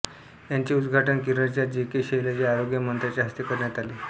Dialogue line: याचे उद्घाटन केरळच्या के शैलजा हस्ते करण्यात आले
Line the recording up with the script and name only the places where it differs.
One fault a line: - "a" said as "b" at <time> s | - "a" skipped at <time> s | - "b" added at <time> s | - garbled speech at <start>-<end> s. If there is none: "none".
- "जे" added at 1.7 s
- "आरोग्य मंत्र्यांच्या" added at 2.5 s